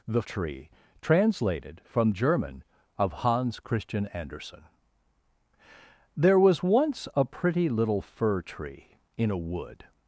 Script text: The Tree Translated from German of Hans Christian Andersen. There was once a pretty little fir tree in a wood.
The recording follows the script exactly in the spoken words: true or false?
true